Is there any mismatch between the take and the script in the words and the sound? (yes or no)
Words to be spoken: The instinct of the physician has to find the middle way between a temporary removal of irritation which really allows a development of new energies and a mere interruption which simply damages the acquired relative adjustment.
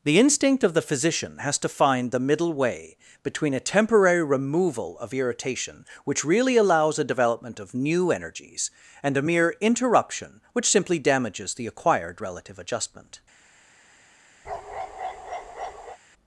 yes